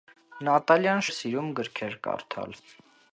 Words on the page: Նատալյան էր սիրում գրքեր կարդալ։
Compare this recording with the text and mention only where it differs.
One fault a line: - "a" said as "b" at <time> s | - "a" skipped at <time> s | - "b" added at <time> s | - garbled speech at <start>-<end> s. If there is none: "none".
none